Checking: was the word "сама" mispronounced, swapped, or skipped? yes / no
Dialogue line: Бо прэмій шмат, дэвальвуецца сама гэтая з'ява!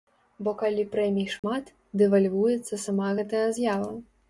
no